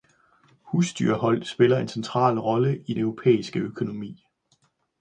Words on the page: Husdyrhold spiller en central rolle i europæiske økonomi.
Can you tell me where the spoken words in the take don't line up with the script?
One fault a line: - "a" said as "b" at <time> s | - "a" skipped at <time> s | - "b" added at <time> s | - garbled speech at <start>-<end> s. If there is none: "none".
none